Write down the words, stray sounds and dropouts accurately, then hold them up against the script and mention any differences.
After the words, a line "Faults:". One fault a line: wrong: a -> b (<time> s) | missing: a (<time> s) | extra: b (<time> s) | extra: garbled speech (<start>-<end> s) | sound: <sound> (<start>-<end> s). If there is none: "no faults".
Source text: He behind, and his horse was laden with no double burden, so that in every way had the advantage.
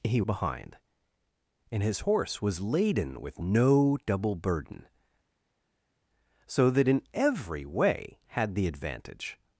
He behind, and his horse was laden with no double burden, so that in every way had the advantage.
Faults:
no faults